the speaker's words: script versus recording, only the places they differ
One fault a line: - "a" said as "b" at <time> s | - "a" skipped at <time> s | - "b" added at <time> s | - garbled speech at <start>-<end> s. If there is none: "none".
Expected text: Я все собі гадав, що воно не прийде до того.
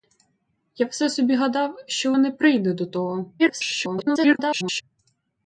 - "воно" skipped at 2.1 s
- garbled speech at 3.4-4.8 s